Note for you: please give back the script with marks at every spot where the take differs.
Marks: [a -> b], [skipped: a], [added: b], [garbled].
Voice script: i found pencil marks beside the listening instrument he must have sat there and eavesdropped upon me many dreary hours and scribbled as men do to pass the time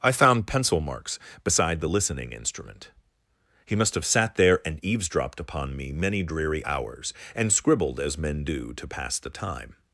i found pencil marks beside the listening instrument he must have sat there and eavesdropped upon me many dreary hours and scribbled as men do to pass the time